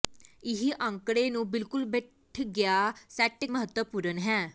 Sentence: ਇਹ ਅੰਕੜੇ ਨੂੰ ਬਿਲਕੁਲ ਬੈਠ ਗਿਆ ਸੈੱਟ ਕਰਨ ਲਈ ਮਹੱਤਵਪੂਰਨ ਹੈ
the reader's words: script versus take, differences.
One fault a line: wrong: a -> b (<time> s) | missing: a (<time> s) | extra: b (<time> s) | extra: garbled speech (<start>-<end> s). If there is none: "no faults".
missing: ਕਰਨ ਲਈ (3.5 s)